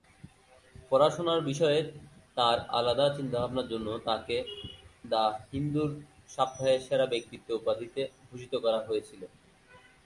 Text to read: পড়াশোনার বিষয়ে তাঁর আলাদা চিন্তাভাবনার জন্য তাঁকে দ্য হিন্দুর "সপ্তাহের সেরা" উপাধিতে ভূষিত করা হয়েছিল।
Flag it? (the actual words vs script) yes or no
yes